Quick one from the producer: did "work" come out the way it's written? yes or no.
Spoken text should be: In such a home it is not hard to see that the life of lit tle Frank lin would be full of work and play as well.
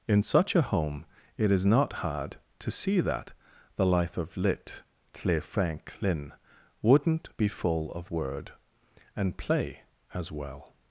no